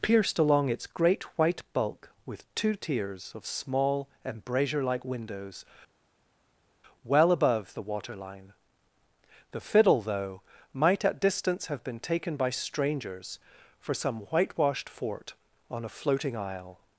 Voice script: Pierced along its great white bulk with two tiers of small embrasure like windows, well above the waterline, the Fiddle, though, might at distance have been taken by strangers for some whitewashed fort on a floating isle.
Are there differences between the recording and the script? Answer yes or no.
no